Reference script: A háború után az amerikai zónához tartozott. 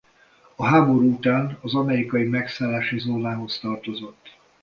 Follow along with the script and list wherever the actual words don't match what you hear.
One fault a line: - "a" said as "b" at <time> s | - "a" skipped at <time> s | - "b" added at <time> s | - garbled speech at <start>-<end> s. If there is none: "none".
- "megszállási" added at 2.2 s